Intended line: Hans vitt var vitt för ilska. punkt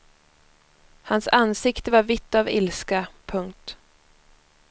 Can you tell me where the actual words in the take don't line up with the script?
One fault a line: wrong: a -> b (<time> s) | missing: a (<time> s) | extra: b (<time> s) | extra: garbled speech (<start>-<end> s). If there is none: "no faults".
wrong: vitt -> ansikte (1.3 s)
wrong: för -> av (2.4 s)